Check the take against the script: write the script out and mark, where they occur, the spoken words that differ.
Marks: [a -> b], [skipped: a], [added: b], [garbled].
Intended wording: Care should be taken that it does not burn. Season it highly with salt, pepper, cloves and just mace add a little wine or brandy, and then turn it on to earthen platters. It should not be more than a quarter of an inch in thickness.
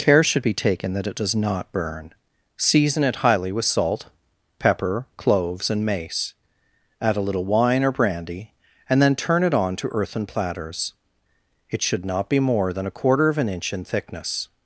Care should be taken that it does not burn. Season it highly with salt, pepper, cloves and [skipped: just] mace add a little wine or brandy, and then turn it on to earthen platters. It should not be more than a quarter of an inch in thickness.